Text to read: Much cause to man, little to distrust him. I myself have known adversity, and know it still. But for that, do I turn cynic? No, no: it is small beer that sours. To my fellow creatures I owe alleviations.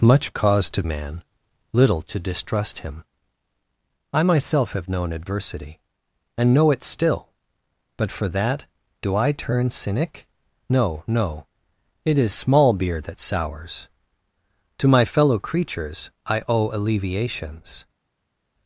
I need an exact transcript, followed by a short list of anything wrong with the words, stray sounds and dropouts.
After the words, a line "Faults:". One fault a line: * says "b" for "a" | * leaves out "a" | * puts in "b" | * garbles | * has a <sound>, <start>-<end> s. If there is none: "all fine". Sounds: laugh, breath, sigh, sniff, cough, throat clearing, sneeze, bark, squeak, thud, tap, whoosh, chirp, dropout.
Much cause to man, little to distrust him. I myself have known adversity, and know it still. But for that, do I turn cynic? No, no: it is small beer that sours. To my fellow creatures I owe alleviations.
Faults:
all fine